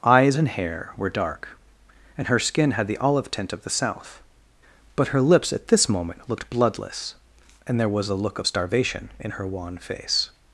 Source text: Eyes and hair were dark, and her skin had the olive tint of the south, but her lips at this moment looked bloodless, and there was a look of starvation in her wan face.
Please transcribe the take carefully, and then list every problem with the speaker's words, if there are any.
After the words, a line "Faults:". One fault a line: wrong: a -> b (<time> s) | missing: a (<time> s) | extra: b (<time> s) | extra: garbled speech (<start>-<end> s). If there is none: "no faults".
Eyes and hair were dark, and her skin had the olive tint of the south, but her lips at this moment looked bloodless, and there was a look of starvation in her wan face.
Faults:
no faults